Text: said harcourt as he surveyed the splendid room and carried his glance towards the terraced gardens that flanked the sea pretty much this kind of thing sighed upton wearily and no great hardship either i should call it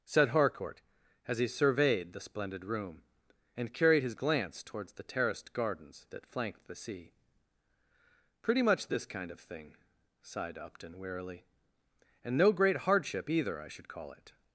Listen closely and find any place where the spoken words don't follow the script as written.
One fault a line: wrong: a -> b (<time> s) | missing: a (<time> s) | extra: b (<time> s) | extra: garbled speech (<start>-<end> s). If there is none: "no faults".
no faults